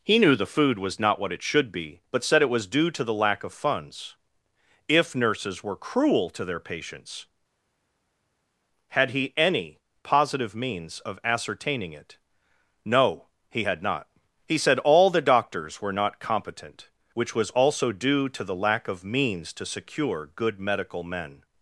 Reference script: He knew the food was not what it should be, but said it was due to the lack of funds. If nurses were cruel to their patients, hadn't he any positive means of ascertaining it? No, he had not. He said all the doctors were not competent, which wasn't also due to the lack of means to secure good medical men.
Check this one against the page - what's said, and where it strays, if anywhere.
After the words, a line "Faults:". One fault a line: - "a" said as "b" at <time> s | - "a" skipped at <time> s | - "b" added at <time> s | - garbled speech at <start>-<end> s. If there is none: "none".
He knew the food was not what it should be, but said it was due to the lack of funds. If nurses were cruel to their patients, had he any positive means of ascertaining it? No, he had not. He said all the doctors were not competent, which was also due to the lack of means to secure good medical men.
Faults:
- "hadn't" said as "had" at 8.9 s
- "wasn't" said as "was" at 17.3 s